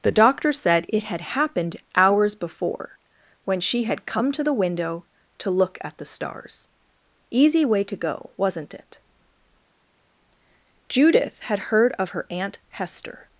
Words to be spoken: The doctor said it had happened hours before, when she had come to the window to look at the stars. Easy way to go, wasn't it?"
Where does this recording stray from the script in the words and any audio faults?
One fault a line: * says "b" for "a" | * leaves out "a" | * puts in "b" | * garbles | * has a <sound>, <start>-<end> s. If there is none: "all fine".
* puts in "Judith had heard of her Aunt Hester"